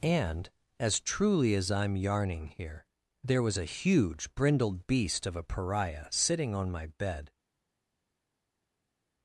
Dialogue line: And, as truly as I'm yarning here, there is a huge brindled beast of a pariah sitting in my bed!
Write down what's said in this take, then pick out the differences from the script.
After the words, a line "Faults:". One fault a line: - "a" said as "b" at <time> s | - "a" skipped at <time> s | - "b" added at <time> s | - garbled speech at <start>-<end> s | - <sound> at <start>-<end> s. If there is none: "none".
And, as truly as I'm yarning here, there was a huge brindled beast of a pariah sitting on my bed!
Faults:
- "is" said as "was" at 3.4 s
- "in" said as "on" at 6.6 s